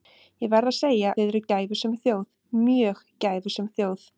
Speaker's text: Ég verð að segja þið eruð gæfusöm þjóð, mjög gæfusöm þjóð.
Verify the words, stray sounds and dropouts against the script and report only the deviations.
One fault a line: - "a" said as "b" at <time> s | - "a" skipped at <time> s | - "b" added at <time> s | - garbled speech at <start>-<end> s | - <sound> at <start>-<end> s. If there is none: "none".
none